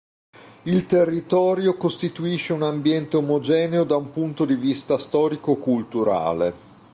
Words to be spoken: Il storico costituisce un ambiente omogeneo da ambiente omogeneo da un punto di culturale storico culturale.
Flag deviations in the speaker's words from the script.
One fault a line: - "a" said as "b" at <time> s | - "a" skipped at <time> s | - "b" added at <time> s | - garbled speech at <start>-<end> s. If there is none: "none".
- "storico" said as "territorio" at 0.9 s
- "ambiente omogeneo da" skipped at 4.0 s
- "culturale" said as "vista" at 4.5 s